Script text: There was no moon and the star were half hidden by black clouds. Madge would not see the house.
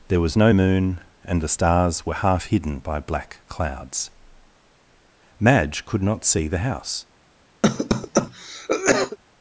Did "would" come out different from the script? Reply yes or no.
yes